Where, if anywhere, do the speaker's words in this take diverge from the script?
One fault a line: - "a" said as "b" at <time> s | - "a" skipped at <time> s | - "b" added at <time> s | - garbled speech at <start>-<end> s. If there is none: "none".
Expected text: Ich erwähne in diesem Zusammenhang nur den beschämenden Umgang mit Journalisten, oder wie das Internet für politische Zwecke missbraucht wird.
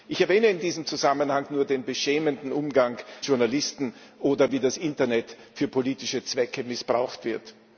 - "mit" skipped at 3.0 s